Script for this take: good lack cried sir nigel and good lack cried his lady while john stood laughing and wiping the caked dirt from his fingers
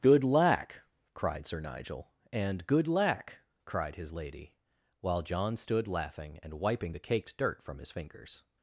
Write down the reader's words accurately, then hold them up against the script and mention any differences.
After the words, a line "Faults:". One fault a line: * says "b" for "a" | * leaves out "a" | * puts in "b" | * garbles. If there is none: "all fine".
good lack cried sir nigel and good lack cried his lady while john stood laughing and wiping the caked dirt from his fingers
Faults:
all fine